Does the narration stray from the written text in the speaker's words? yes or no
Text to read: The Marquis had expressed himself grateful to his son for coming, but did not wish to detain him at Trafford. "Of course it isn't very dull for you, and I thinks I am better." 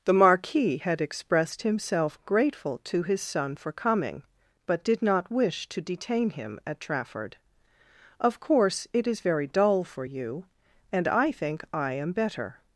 yes